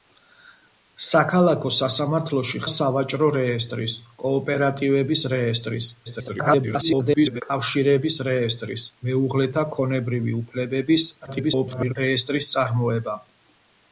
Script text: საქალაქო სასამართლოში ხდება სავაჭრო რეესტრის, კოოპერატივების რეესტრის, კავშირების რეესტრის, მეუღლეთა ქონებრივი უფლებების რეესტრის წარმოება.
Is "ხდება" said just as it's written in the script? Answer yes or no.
no